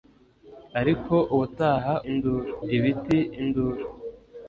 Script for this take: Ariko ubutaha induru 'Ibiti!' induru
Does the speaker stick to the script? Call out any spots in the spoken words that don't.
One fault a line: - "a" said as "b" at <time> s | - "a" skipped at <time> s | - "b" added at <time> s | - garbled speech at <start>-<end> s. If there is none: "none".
none